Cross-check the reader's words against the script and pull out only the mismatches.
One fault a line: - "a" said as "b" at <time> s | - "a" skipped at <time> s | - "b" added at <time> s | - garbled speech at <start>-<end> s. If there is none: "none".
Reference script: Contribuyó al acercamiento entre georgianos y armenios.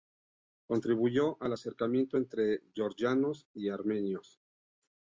none